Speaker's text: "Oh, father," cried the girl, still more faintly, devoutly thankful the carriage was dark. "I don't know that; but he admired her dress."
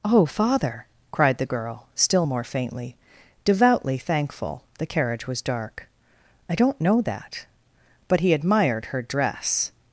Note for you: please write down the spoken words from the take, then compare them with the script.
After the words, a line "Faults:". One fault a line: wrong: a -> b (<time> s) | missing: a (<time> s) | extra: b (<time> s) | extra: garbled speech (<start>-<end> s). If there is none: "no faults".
"Oh, father," cried the girl, still more faintly, devoutly thankful the carriage was dark. "I don't know that; but he admired her dress."
Faults:
no faults